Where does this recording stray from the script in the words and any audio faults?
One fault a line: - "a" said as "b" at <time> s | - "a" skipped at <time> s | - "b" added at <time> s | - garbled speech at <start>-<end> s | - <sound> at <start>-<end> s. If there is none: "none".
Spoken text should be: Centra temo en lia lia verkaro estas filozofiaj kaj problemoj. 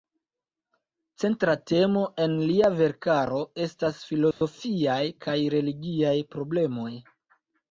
- "lia" skipped at 2.7 s
- dropout at 4.3-4.4 s
- "religiaj" added at 5.6 s